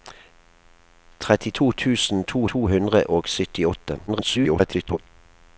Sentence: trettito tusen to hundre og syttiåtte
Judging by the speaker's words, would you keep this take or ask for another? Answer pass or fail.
fail